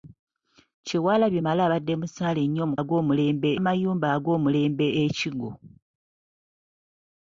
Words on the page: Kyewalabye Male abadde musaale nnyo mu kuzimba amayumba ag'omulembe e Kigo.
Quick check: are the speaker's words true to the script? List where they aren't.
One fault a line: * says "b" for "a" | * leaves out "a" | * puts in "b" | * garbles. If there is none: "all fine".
* says "ag'omulembe" for "kuzimba"